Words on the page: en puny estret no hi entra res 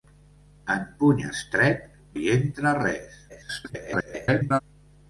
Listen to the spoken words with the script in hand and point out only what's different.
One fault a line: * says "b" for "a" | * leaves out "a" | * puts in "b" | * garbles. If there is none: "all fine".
* leaves out "no"
* garbles